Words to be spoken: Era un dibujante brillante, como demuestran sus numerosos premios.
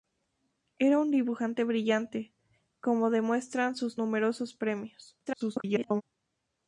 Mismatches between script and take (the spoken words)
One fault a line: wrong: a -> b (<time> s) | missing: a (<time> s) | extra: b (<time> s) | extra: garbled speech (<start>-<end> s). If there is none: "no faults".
extra: garbled speech (5.3-6.0 s)